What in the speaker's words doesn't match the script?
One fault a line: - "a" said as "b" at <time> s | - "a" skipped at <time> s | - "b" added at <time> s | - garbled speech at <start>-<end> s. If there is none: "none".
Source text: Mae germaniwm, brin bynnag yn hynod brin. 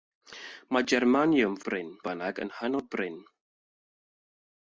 none